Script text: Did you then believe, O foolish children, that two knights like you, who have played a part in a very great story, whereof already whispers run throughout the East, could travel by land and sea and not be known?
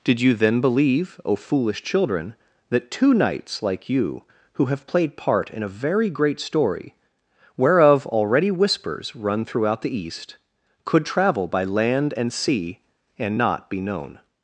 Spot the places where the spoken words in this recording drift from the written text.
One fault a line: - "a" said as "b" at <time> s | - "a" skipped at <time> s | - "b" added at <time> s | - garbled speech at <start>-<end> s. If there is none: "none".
- "a" skipped at 5.2 s